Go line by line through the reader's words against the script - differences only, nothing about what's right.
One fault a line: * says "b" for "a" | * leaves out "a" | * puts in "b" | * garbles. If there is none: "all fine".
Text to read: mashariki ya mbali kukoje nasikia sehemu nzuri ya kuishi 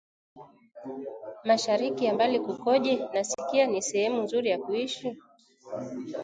* puts in "ni"